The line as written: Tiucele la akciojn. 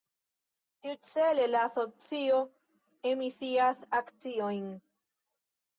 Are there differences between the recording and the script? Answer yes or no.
yes